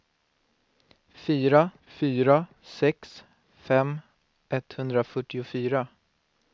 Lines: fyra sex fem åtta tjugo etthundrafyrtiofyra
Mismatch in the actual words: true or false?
true